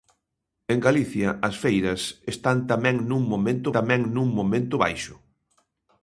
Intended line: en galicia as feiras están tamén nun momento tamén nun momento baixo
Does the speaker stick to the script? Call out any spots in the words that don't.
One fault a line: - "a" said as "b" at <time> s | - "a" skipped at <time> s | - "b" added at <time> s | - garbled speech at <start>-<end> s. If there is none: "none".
none